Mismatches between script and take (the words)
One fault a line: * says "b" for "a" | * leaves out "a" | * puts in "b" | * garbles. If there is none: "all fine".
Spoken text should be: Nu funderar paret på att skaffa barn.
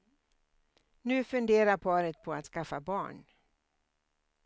all fine